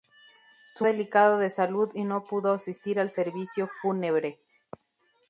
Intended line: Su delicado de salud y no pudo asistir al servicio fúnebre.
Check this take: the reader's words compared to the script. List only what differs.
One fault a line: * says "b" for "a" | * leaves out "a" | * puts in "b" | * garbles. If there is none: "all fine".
all fine